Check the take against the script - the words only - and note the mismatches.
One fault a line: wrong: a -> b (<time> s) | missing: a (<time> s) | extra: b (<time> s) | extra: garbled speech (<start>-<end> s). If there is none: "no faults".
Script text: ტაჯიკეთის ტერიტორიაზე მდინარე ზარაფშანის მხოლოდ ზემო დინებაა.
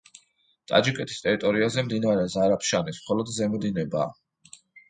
no faults